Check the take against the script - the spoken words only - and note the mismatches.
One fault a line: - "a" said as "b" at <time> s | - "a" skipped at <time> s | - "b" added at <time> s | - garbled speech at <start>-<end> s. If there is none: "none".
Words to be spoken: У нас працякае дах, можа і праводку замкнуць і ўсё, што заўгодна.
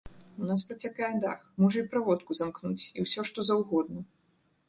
none